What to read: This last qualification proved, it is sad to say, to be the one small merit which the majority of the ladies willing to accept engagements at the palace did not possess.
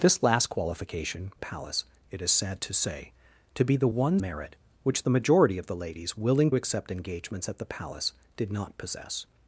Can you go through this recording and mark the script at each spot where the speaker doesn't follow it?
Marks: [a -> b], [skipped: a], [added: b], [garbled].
This last qualification [proved, -> palace] it is sad to say, to be the one [skipped: small] merit which the majority of the ladies willing [skipped: to] accept engagements at the palace did not possess.